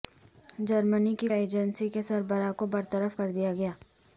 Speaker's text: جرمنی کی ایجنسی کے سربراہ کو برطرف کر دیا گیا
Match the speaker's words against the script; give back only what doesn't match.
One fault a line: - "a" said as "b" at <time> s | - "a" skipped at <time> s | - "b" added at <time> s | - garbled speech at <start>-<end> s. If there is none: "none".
none